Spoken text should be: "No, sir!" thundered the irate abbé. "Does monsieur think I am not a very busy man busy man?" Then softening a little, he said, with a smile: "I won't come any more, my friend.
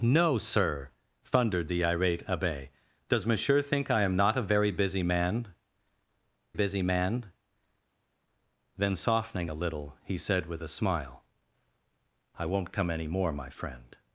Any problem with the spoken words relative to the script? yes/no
no